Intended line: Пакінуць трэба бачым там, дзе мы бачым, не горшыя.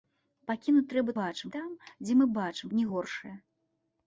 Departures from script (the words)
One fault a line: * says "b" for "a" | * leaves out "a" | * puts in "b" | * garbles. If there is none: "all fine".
all fine